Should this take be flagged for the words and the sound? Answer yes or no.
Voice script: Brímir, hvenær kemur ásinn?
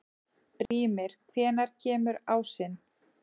yes